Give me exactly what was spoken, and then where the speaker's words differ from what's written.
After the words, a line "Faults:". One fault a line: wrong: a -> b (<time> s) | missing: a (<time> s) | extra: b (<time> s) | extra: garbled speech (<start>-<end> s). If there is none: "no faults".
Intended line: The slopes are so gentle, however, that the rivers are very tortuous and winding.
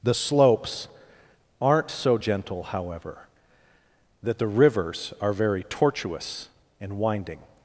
The slopes aren't so gentle, however, that the rivers are very tortuous and winding.
Faults:
wrong: are -> aren't (1.6 s)